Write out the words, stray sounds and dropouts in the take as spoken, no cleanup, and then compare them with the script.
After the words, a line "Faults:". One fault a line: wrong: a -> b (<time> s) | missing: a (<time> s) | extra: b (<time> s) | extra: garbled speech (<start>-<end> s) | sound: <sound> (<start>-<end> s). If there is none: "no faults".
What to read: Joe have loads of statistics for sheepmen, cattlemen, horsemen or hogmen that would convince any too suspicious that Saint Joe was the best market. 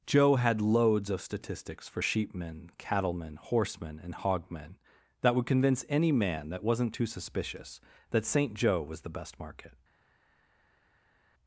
Joe had loads of statistics for sheepmen, cattlemen, horsemen and hogmen that would convince any man that wasn't too suspicious that Saint Joe was the best market.
Faults:
wrong: have -> had (0.3 s)
wrong: or -> and (4.0 s)
extra: man that wasn't (6.1 s)